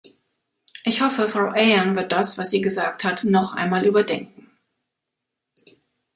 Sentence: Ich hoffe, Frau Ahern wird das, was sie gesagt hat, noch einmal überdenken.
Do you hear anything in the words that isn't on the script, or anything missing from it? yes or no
no